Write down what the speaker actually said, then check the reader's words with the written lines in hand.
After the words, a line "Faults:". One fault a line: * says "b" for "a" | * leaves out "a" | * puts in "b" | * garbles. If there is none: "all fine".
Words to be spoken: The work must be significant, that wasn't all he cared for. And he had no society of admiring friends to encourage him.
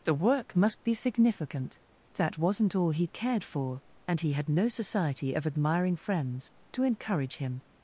The work must be significant, that wasn't all he cared for. And he had no society of admiring friends to encourage him.
Faults:
all fine